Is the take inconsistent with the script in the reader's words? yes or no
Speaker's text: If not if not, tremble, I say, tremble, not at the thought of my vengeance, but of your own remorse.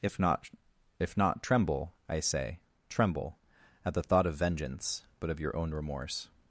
yes